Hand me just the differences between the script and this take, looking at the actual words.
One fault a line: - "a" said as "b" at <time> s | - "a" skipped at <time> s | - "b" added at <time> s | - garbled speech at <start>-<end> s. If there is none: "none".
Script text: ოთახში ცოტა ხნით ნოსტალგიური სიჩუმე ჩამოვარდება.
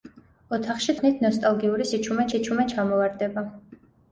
- "ცოტა" skipped at 0.9 s
- "სიჩუმე" added at 2.3 s